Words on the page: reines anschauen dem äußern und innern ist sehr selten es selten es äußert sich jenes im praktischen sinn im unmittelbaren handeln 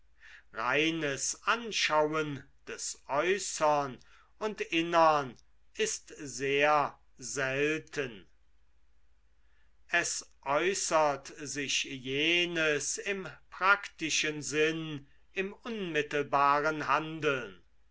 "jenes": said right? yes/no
yes